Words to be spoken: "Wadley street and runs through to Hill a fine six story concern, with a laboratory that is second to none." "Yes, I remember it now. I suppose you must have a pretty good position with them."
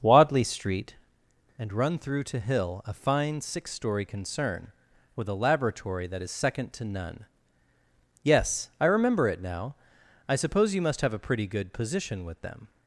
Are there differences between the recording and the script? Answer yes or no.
yes